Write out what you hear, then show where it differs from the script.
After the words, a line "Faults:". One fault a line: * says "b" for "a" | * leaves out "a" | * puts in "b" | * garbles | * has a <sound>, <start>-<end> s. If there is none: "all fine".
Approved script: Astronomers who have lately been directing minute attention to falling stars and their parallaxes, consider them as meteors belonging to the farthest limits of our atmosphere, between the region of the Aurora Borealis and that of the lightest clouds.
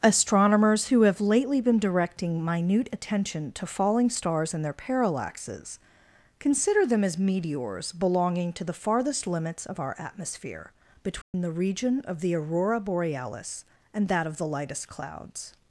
Astronomers who have lately been directing minute attention to falling stars and their parallaxes, consider them as meteors belonging to the farthest limits of our atmosphere, between the region of the Aurora Borealis and that of the lightest clouds.
Faults:
* has a dropout, 11.2-11.3 s